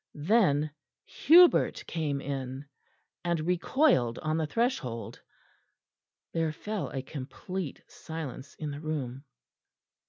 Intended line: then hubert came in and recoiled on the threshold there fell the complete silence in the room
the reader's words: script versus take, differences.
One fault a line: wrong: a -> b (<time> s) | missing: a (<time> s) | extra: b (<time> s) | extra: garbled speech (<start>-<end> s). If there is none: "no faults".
wrong: the -> a (6.9 s)